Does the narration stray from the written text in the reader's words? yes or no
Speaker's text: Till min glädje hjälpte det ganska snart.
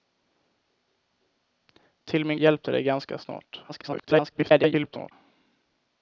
yes